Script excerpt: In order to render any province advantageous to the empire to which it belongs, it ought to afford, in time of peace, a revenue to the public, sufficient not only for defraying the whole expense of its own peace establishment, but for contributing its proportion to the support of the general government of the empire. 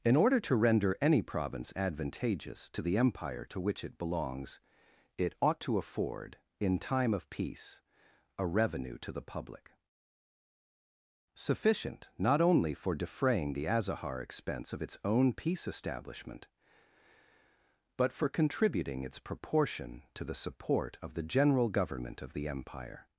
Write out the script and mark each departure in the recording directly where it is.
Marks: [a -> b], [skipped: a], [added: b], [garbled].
In order to render any province advantageous to the empire to which it belongs, it ought to afford, in time of peace, a revenue to the public, sufficient not only for defraying the [whole -> azahar] expense of its own peace establishment, but for contributing its proportion to the support of the general government of the empire.